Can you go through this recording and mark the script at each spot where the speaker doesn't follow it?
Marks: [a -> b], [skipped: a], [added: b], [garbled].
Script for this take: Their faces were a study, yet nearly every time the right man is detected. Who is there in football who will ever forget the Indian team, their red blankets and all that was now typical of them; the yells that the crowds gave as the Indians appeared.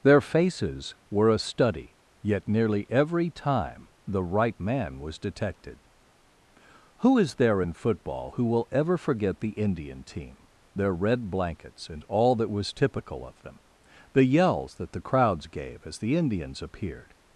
Their faces were a study, yet nearly every time the right man [is -> was] detected. Who is there in football who will ever forget the Indian team, their red blankets and all that was [skipped: now] typical of them; the yells that the crowds gave as the Indians appeared.